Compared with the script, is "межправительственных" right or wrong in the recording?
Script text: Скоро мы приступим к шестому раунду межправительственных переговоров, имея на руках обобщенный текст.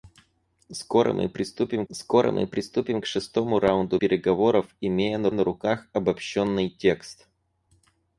wrong